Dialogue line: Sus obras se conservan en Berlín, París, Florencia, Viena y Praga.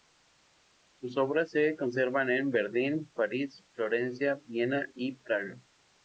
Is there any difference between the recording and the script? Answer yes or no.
no